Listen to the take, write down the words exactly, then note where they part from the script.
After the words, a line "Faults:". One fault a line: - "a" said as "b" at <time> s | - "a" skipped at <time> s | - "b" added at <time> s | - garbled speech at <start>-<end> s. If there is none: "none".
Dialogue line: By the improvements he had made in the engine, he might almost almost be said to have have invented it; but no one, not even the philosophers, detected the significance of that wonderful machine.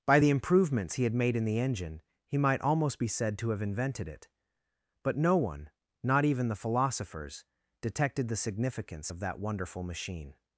By the improvements he had made in the engine, he might almost be said to have invented it; but no one, not even the philosophers, detected the significance of that wonderful machine.
Faults:
- "almost" skipped at 3.0 s
- "have" skipped at 3.6 s